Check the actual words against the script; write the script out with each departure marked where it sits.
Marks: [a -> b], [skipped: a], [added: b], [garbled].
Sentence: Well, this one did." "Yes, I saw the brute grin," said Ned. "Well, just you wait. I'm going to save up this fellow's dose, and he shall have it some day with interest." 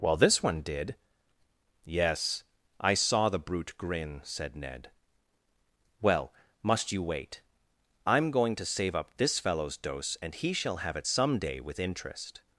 Well, this one did." "Yes, I saw the brute grin," said Ned. "Well, [just -> must] you wait. I'm going to save up this fellow's dose, and he shall have it some day with interest."